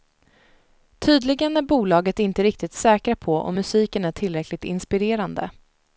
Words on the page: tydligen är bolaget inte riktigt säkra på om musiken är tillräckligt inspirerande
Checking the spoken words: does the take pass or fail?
pass